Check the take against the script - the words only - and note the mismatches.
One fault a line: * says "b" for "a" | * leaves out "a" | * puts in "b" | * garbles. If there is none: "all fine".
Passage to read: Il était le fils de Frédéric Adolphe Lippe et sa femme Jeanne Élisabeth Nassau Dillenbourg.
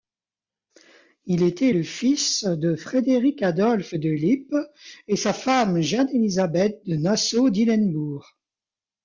* puts in "de"
* puts in "de"